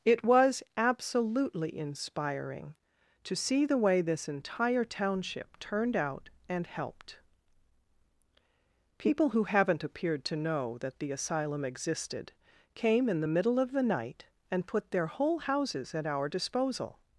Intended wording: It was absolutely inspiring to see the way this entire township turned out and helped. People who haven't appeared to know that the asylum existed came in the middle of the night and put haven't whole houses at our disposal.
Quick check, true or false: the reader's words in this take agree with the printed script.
false